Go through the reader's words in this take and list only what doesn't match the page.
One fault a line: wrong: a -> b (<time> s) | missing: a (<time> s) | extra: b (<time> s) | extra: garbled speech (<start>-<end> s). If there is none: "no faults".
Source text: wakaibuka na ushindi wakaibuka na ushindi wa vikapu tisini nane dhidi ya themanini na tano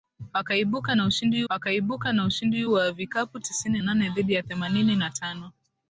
no faults